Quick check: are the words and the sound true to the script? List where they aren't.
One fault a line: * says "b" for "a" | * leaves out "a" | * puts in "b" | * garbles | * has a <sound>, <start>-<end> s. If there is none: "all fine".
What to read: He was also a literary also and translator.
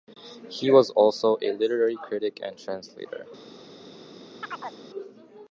* says "critic" for "also"
* has a chirp, 4.4-4.8 s